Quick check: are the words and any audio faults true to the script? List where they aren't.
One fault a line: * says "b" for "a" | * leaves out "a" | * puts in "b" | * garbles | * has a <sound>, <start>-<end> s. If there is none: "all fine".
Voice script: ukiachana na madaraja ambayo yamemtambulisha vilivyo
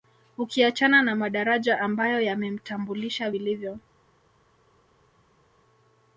all fine